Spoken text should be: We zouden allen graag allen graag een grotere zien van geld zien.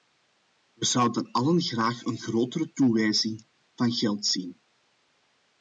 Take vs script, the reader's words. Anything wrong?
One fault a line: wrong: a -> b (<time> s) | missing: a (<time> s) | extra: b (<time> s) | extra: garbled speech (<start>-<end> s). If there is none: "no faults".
missing: allen graag (2.1 s)
wrong: zien -> toewijzing (2.7 s)